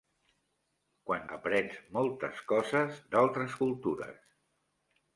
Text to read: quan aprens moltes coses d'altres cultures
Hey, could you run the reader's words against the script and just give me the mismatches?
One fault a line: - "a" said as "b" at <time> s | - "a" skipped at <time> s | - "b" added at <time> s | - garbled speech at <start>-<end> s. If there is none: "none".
none